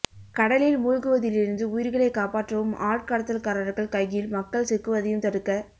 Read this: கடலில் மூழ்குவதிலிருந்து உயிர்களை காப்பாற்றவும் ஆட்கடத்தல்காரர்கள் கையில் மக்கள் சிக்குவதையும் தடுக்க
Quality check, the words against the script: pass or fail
pass